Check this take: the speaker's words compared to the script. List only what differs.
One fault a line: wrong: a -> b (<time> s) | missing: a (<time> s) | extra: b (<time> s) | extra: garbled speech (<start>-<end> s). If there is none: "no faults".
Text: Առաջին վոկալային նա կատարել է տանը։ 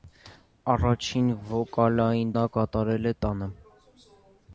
no faults